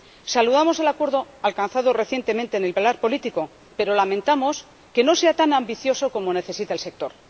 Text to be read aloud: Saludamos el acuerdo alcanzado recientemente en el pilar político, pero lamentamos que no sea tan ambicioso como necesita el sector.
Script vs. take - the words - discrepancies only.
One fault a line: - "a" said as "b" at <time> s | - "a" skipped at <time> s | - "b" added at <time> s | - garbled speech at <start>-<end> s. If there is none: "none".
none